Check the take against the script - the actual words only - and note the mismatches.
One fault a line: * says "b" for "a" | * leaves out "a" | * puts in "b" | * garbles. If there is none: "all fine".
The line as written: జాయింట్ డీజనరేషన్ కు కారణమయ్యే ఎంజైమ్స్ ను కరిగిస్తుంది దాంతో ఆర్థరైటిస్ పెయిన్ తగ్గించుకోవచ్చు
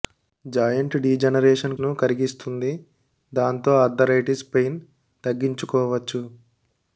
* leaves out "కు కారణమయ్యే ఎంజైమ్స్"